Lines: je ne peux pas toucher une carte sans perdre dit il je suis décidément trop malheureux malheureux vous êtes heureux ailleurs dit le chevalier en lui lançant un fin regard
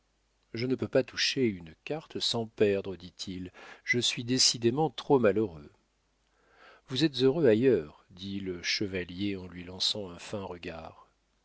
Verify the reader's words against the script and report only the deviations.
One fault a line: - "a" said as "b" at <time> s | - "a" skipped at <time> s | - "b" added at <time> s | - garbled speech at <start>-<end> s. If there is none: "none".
- "malheureux" skipped at 5.7 s